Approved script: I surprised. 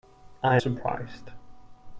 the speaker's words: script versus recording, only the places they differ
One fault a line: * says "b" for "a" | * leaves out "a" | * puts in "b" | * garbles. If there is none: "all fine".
all fine